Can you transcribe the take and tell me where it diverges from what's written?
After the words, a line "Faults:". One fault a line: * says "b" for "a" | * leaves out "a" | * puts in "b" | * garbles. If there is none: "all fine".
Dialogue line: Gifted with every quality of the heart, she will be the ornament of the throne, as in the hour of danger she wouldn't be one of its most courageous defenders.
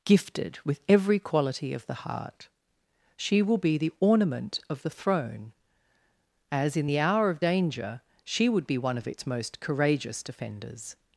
Gifted with every quality of the heart, she will be the ornament of the throne, as in the hour of danger she would be one of its most courageous defenders.
Faults:
* says "would" for "wouldn't"